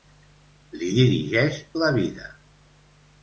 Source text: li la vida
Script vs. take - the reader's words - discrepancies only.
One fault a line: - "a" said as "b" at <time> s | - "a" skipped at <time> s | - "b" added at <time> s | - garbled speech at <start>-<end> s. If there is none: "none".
- "dirigeix" added at 1.0 s